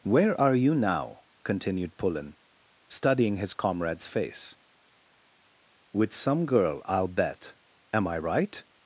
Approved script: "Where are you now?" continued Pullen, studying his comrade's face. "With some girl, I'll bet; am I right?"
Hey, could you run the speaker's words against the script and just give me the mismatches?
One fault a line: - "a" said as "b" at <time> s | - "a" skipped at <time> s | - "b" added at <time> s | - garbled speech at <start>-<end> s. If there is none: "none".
none